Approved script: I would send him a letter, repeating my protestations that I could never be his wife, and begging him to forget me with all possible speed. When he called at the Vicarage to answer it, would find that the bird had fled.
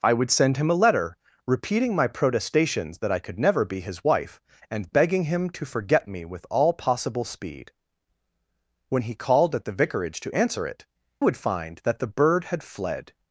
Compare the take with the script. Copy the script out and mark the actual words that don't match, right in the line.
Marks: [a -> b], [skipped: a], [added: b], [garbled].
I would send him a letter, repeating my protestations that I could never be his wife, and begging him to forget me with all possible speed. When he called at the Vicarage to answer it, would find that the bird had fled.